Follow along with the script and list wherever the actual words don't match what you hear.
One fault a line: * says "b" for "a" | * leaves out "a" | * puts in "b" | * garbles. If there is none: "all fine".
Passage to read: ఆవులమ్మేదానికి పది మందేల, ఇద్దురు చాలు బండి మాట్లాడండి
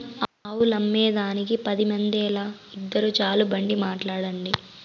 all fine